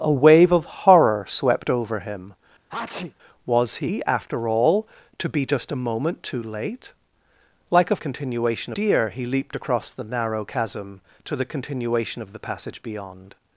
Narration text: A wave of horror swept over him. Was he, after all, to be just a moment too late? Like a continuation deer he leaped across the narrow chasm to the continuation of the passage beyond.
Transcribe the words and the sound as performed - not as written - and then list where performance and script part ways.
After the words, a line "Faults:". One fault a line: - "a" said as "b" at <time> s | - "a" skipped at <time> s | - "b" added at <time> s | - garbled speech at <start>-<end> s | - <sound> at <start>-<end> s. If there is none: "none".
A wave of horror swept over him. Was he, after all, to be just a moment too late? Like a continuation deer he leaped across the narrow chasm to the continuation of the passage beyond.
Faults:
- sneeze at 2.7-3.1 s